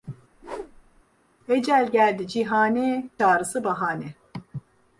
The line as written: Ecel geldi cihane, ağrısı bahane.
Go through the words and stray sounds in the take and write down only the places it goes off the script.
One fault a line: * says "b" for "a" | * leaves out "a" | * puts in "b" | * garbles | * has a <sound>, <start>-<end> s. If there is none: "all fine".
* has a whoosh, 0.3-1.0 s